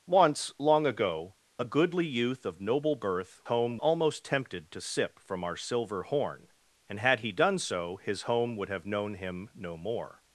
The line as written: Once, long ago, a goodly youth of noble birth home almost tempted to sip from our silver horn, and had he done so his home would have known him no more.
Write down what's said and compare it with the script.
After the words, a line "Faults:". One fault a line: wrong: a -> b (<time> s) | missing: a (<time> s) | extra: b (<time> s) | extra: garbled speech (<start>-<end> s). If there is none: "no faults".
Once, long ago, a goodly youth of noble birth home almost tempted to sip from our silver horn, and had he done so his home would have known him no more.
Faults:
no faults